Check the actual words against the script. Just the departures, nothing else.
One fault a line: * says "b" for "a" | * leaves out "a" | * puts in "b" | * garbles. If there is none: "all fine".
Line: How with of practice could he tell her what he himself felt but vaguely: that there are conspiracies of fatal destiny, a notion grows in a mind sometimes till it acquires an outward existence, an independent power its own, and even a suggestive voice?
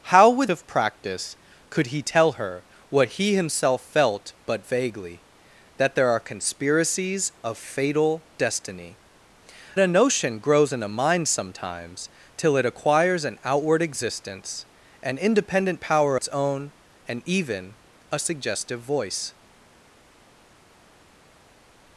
all fine